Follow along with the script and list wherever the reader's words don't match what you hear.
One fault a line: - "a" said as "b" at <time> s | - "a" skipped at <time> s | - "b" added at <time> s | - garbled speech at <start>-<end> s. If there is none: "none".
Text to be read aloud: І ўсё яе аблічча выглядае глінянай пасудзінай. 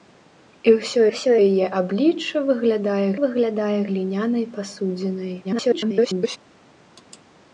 - "ўсё" added at 1.1 s
- "выглядае" added at 3.2 s
- garbled speech at 5.4-6.4 s